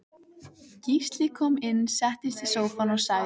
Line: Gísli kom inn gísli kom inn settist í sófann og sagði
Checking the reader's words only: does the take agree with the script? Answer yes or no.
no